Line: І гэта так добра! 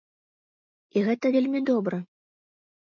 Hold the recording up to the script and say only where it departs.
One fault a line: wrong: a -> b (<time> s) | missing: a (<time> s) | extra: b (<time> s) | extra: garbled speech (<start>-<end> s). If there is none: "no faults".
wrong: так -> вельмі (1.3 s)